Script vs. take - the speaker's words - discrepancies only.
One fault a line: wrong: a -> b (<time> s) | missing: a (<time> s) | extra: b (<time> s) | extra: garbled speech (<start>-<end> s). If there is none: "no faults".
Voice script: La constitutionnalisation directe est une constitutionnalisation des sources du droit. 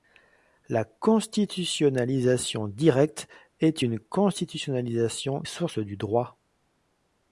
missing: des (5.4 s)